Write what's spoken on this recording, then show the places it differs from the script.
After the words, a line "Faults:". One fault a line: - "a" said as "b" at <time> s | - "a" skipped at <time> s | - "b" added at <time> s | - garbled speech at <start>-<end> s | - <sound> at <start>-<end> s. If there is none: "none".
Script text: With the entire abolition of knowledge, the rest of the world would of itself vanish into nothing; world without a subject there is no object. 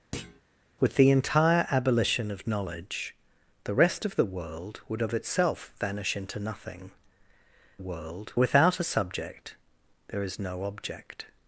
With the entire abolition of knowledge, the rest of the world would of itself vanish into nothing; world without a subject there is no object.
Faults:
- thud at 0.1-0.4 s